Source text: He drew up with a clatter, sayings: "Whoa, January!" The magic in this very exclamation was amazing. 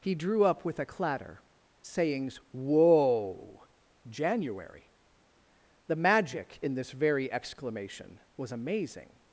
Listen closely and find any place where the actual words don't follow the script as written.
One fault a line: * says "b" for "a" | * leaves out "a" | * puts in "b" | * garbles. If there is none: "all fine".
all fine